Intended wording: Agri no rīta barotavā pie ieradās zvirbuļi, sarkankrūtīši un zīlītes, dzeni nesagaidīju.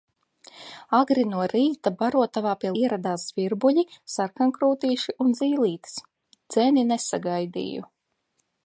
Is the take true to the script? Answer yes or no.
yes